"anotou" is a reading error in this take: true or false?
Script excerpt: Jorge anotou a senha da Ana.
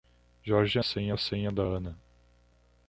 true